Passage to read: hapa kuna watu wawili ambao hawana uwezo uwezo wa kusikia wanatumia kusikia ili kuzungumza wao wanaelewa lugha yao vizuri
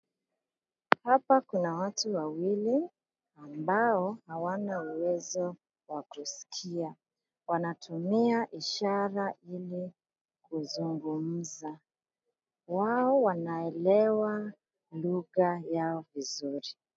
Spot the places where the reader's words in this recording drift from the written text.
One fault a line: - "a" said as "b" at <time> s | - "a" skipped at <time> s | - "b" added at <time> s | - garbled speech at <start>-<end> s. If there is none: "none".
- "uwezo" skipped at 5.5 s
- "kusikia" said as "ishara" at 8.5 s